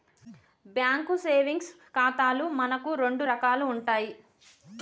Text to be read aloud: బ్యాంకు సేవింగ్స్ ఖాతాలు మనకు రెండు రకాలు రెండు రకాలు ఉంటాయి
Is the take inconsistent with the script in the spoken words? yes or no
yes